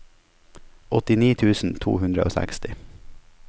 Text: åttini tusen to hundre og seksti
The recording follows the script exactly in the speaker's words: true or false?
true